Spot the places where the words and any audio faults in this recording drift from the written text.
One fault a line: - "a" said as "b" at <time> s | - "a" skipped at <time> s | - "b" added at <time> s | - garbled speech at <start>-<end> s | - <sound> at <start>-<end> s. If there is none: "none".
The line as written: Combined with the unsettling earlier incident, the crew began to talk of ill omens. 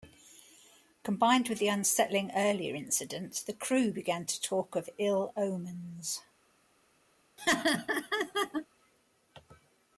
- laugh at 7.4-8.7 s